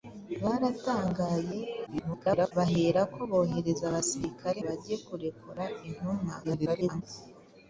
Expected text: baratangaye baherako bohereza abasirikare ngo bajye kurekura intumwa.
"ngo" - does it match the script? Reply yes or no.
no